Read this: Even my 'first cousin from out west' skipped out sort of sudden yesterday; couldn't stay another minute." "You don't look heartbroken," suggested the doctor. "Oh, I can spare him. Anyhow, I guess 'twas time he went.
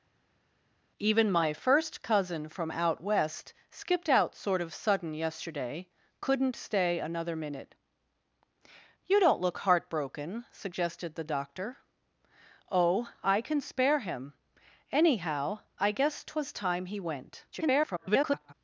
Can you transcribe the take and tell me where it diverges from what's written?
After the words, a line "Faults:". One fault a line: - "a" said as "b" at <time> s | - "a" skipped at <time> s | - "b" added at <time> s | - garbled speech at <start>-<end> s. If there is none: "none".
Even my 'first cousin from out west' skipped out sort of sudden yesterday; couldn't stay another minute." "You don't look heartbroken," suggested the doctor. "Oh, I can spare him. Anyhow, I guess 'twas time he went. [garbled]
Faults:
- garbled speech at 17.5-18.5 s